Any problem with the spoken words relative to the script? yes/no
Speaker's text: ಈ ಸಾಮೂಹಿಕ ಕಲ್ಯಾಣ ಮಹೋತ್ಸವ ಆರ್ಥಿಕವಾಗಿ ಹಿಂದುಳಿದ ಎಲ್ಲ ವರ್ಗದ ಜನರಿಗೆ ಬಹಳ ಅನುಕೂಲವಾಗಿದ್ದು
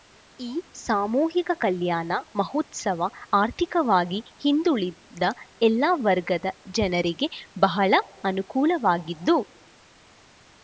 no